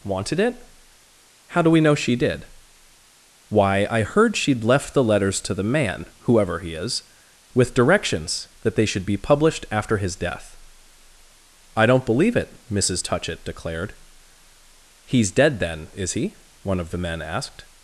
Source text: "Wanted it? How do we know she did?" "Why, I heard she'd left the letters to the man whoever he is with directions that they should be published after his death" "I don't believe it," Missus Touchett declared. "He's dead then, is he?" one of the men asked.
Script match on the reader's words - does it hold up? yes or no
yes